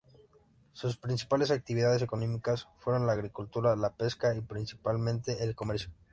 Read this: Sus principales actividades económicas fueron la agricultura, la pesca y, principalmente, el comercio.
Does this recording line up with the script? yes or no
yes